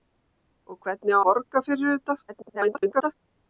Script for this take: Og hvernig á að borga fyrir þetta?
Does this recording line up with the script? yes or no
no